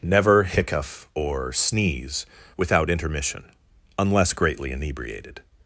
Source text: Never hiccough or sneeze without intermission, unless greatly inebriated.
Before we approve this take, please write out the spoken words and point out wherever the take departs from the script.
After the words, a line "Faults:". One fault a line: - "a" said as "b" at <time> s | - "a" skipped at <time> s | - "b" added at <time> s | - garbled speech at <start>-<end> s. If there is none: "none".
Never hiccough or sneeze without intermission, unless greatly inebriated.
Faults:
none